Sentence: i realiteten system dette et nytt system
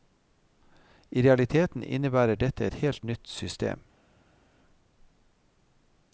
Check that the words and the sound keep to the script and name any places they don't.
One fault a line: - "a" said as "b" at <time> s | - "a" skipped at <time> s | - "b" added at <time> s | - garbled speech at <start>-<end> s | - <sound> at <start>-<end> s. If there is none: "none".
- "system" said as "innebærer" at 1.8 s
- "helt" added at 2.7 s